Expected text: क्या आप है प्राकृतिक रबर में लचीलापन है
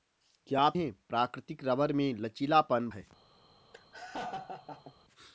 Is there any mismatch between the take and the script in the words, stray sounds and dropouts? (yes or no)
yes